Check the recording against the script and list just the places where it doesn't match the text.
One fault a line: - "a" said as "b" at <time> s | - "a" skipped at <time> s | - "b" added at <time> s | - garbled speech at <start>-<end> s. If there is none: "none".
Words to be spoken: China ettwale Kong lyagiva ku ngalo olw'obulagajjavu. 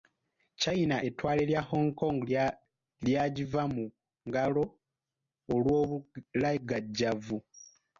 - "lya Hong" added at 1.5 s
- "ku" said as "mu" at 3.7 s